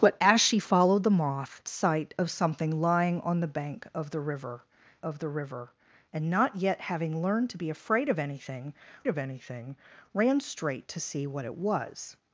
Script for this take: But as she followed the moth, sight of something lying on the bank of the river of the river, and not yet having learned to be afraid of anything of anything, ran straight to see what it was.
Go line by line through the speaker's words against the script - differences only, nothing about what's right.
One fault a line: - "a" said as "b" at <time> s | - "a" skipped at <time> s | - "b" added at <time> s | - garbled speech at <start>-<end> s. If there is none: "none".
none